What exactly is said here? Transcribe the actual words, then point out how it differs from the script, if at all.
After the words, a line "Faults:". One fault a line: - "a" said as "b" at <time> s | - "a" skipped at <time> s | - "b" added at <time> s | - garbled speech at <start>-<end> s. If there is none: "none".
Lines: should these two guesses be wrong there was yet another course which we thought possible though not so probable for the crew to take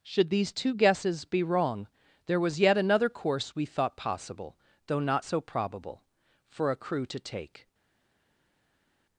should these two guesses be wrong there was yet another course we thought possible though not so probable for a crew to take
Faults:
- "which" skipped at 3.5 s
- "the" said as "a" at 6.7 s